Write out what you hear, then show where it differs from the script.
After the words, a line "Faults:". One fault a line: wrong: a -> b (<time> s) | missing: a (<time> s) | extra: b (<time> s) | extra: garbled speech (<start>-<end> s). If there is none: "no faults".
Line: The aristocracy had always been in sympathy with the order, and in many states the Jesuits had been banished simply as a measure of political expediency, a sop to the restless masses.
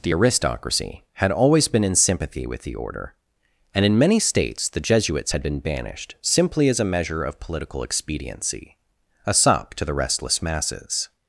The aristocracy had always been in sympathy with the order, and in many states the Jesuits had been banished simply as a measure of political expediency, a sop to the restless masses.
Faults:
no faults